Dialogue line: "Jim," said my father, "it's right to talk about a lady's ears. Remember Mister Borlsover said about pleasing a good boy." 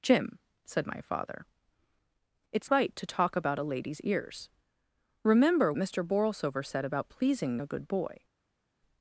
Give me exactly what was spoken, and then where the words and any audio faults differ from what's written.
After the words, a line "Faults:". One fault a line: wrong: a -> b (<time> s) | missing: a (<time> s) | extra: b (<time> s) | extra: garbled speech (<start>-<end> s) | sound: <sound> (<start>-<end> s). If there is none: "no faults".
"Jim," said my father, "it's right to talk about a lady's ears. Remember Mister Borlsover said about pleasing a good boy."
Faults:
no faults